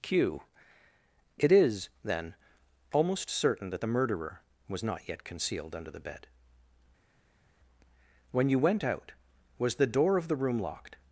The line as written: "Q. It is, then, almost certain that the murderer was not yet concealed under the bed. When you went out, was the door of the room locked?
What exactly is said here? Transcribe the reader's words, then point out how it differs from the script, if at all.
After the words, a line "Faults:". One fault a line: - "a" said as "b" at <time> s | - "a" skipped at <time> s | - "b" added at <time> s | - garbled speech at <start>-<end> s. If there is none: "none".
"Q. It is, then, almost certain that the murderer was not yet concealed under the bed. When you went out, was the door of the room locked?
Faults:
none